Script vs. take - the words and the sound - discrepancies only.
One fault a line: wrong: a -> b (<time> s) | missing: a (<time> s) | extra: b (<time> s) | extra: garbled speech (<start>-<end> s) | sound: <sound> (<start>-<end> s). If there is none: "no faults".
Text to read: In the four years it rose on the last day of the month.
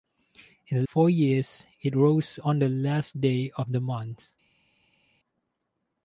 no faults